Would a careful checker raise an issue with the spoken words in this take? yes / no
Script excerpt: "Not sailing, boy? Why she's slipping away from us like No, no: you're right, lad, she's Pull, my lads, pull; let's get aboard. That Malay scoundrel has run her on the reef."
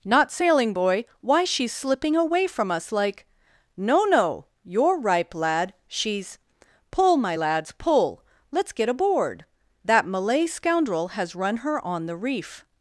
yes